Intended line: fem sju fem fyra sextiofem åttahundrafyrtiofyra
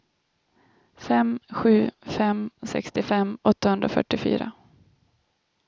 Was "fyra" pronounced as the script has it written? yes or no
no